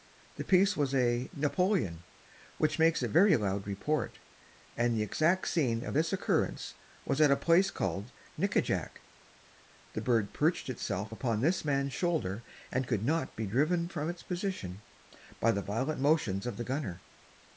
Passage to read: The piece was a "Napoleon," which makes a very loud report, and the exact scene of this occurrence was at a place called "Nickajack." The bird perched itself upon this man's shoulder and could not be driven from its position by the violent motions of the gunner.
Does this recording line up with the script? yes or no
yes